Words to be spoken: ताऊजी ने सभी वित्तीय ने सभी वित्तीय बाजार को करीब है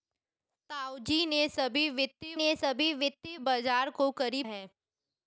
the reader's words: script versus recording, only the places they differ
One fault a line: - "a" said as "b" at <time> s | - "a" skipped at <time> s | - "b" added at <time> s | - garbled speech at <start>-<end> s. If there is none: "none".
none